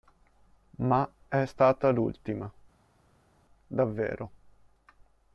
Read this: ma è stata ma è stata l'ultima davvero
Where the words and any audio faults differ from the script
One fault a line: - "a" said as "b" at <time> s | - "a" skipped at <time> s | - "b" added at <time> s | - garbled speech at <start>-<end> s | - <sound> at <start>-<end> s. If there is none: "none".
- "ma è stata" skipped at 1.9 s